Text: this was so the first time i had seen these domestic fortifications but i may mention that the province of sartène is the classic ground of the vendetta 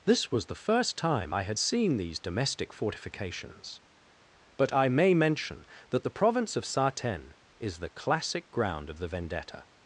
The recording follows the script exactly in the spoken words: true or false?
false